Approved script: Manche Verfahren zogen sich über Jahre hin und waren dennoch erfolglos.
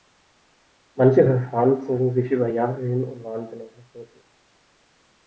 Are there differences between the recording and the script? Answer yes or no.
no